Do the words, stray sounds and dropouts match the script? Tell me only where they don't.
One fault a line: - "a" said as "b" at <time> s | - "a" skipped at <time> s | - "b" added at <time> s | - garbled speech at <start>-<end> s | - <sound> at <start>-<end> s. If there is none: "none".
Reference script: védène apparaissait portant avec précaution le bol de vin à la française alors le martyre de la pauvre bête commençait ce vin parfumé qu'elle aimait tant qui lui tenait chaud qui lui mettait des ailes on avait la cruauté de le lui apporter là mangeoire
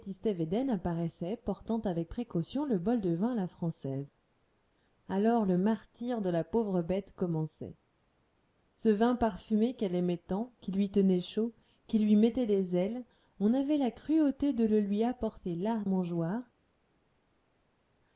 none